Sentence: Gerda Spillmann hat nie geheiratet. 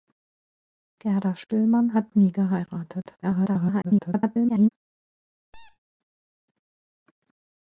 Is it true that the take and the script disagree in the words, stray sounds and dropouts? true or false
true